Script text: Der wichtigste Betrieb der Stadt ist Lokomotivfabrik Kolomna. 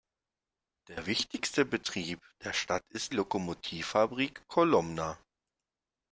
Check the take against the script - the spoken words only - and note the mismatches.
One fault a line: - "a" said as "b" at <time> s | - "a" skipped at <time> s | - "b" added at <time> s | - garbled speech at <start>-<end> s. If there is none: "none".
none